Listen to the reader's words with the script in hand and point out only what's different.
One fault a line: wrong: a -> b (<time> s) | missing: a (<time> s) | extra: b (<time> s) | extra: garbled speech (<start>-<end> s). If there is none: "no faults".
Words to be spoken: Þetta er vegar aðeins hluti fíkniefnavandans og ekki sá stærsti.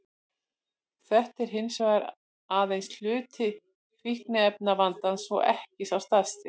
extra: hins (1.6 s)